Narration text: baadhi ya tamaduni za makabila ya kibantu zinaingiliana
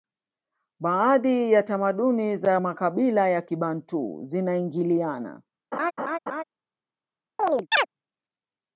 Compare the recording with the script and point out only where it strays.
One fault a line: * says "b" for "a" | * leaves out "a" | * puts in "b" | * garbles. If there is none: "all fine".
all fine